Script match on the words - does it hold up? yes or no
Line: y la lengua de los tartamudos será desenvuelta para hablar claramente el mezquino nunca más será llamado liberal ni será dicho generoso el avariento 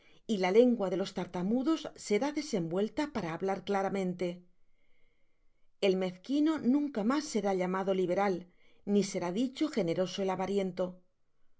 yes